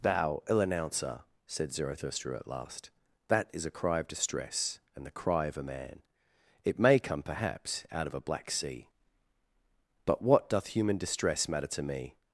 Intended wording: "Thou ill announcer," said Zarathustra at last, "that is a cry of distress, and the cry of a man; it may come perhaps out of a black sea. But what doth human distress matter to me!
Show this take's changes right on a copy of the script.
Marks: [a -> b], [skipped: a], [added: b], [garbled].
"Thou ill announcer," said Zarathustra at last, "that is a cry of distress, and the cry of a man; it may come perhaps out of a black sea. But what doth human distress matter to me!